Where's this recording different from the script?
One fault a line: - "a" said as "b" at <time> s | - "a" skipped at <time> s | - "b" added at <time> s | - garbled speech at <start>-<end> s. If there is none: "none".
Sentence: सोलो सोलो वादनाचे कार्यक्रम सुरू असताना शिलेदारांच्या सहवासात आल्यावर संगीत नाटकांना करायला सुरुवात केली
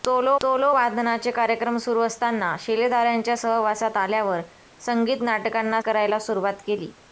none